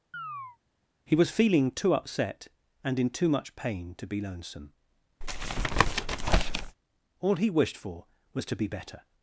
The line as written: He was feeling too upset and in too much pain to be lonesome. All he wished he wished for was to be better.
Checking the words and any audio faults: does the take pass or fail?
fail